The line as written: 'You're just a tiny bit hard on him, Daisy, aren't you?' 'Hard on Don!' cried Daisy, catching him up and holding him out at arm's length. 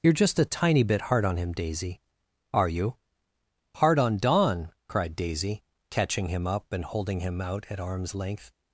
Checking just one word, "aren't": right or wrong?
wrong